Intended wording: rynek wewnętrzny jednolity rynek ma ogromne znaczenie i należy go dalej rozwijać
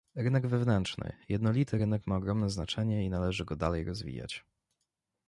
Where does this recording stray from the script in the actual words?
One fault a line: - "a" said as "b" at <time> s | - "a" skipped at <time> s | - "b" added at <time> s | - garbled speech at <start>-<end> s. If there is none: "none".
none